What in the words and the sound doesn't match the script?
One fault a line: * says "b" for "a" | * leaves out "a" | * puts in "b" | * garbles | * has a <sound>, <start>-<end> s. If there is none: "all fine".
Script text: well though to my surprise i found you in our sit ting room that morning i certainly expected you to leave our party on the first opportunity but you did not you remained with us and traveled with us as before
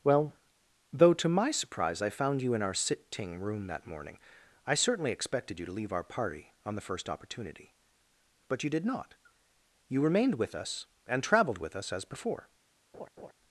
* has a laugh, 12.9-13.3 s